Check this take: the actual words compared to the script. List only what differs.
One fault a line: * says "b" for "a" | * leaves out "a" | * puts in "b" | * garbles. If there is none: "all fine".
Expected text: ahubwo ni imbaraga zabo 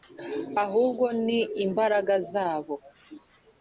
all fine